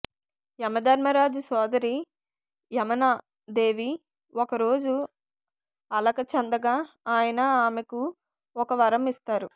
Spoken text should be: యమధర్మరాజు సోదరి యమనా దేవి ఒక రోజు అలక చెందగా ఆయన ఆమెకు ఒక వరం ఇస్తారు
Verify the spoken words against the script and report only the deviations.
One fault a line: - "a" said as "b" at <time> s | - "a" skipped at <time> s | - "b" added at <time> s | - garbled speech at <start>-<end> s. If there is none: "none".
none